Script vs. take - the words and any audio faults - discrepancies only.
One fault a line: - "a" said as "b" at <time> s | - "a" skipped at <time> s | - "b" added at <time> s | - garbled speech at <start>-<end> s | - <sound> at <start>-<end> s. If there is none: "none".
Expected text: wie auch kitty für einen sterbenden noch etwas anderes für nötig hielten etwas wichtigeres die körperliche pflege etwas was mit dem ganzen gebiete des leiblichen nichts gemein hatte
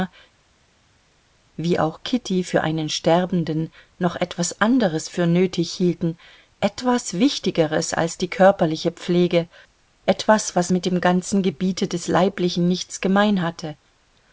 - "als" added at 7.9 s